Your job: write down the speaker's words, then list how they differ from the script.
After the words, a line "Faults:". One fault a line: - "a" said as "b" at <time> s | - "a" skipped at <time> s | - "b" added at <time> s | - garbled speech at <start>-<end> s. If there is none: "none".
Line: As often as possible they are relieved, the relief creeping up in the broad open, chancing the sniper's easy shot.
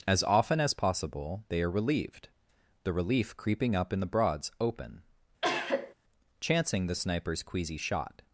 As often as possible they are relieved, the relief creeping up in the broads open, chancing the sniper's queasy shot.
Faults:
- "broad" said as "broads" at 4.1 s
- "easy" said as "queasy" at 7.4 s